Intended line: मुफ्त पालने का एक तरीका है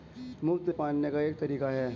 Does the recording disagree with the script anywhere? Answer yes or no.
no